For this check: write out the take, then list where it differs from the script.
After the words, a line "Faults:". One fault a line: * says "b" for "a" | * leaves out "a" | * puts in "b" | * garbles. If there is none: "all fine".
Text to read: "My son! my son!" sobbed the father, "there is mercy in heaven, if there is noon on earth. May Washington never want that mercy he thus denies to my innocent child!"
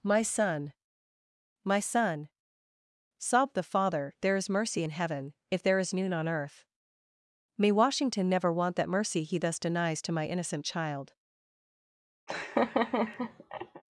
"My son! my son!" sobbed the father, "there is mercy in heaven, if there is noon on earth. May Washington never want that mercy he thus denies to my innocent child!"
Faults:
all fine